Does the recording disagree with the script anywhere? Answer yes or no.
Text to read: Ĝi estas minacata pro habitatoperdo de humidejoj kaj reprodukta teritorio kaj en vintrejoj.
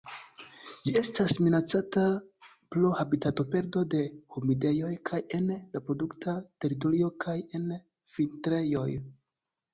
yes